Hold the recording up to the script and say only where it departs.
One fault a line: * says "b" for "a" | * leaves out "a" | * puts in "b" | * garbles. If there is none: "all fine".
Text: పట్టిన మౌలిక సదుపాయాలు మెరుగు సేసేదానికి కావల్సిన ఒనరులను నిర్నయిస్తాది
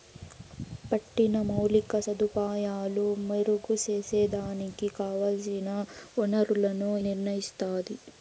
all fine